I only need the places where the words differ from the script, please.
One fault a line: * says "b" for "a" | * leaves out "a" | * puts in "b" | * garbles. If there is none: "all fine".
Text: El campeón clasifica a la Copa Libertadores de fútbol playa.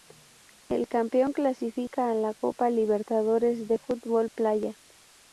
all fine